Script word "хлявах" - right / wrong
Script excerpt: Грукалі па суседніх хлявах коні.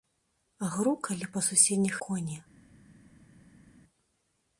wrong